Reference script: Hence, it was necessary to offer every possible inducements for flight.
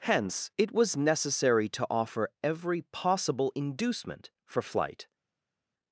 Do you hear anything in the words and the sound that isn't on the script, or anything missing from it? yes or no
yes